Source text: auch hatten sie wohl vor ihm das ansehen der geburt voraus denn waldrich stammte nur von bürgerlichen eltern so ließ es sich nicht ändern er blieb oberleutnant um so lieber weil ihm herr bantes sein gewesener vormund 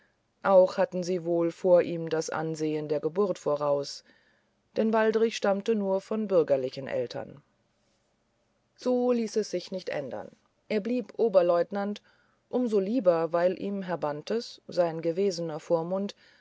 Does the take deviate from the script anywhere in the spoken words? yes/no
no